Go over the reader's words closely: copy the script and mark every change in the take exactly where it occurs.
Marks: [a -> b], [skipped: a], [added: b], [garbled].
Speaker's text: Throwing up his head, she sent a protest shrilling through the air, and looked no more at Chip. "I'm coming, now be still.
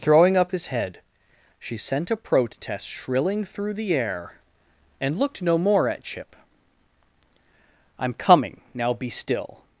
Throwing up his head, she sent a protest shrilling through the air, and looked no more at Chip. "I'm coming, now be still.